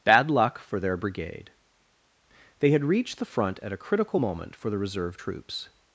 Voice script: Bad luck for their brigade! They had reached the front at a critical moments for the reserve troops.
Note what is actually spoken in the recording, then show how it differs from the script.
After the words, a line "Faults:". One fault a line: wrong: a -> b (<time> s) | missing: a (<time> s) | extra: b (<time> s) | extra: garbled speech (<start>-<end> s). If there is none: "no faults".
Bad luck for their brigade! They had reached the front at a critical moment for the reserve troops.
Faults:
wrong: moments -> moment (4.2 s)